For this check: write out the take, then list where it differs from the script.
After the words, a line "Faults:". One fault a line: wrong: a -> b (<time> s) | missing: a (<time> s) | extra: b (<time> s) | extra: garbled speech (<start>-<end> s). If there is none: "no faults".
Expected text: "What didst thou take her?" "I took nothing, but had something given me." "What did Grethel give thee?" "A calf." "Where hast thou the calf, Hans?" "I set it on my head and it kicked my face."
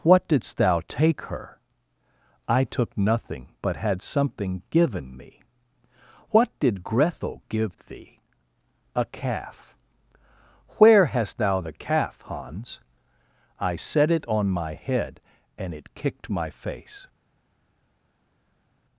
"What didst thou take her?" "I took nothing, but had something given me." "What did Grethel give thee?" "A calf." "Where hast thou the calf, Hans?" "I set it on my head and it kicked my face."
Faults:
no faults